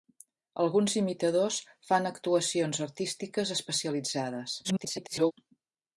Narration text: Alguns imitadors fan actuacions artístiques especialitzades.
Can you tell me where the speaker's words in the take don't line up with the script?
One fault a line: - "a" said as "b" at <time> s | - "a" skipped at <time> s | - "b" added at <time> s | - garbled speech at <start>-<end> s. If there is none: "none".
- garbled speech at 4.6-5.3 s